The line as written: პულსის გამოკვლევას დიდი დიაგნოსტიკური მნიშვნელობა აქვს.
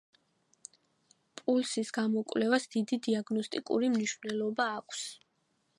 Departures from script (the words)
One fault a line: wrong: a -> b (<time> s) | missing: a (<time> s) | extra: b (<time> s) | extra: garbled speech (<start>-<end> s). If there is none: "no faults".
no faults